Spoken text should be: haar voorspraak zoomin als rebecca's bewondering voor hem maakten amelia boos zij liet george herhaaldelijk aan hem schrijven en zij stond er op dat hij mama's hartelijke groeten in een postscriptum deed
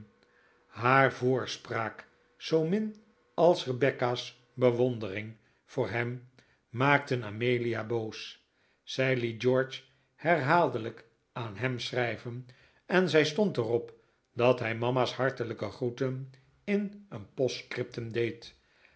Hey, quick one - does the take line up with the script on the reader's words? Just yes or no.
yes